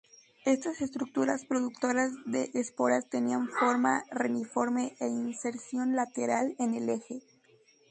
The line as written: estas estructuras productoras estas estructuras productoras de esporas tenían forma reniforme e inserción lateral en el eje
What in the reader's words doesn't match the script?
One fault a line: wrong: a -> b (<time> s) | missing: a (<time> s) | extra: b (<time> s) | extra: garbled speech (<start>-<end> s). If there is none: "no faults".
missing: estas estructuras productoras (2.1 s)